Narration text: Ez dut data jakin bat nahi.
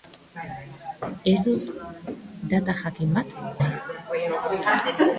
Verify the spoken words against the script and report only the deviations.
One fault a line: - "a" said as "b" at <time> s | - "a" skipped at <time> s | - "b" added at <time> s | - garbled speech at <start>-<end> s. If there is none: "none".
none